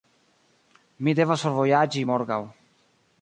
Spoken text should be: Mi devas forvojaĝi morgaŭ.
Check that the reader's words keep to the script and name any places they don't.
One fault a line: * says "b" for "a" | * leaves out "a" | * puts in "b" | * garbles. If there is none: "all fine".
all fine